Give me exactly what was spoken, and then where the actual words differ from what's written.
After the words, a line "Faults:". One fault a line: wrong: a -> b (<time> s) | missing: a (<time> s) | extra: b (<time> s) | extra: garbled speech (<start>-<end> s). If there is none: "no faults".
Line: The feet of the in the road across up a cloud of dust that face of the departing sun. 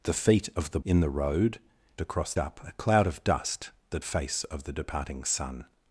The feet of the in the road across up a cloud of dust that face of the departing sun.
Faults:
no faults